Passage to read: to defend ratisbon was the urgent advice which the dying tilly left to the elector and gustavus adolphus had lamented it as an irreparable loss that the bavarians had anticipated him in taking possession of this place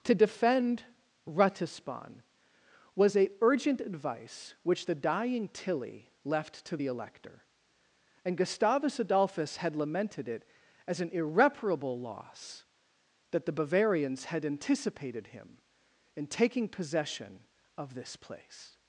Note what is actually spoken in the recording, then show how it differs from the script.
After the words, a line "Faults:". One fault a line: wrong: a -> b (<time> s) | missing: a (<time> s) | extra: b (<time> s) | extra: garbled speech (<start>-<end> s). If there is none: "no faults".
to defend ratisbon was a urgent advice which the dying tilly left to the elector and gustavus adolphus had lamented it as an irreparable loss that the bavarians had anticipated him in taking possession of this place
Faults:
wrong: the -> a (3.1 s)